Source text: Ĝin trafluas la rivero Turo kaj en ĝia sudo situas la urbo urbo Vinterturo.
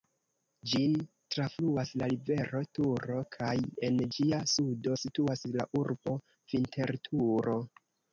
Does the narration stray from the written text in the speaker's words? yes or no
yes